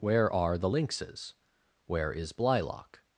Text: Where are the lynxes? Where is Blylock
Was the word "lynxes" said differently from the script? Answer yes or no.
no